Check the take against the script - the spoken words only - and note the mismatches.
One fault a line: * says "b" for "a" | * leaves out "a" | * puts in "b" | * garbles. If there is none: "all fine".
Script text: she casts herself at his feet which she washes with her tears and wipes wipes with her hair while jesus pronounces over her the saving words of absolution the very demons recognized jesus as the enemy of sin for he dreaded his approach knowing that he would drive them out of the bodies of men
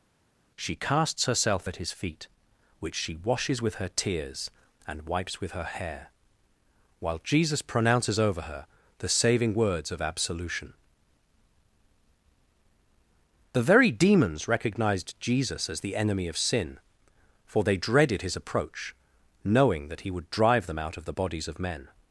* leaves out "wipes"
* says "they" for "he"